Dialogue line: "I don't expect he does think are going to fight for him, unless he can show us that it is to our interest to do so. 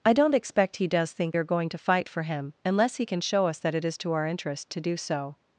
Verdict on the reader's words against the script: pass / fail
pass